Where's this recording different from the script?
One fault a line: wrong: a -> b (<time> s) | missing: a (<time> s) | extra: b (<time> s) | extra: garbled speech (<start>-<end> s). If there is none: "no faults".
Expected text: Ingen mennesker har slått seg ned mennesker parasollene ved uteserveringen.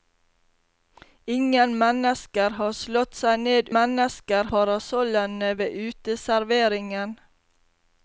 no faults